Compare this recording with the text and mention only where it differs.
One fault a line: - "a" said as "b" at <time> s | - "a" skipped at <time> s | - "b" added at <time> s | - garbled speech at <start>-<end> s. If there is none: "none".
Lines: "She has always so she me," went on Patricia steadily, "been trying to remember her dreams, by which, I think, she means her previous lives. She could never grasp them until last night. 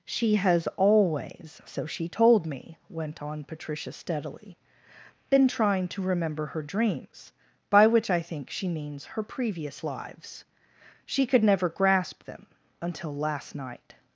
- "told" added at 2.1 s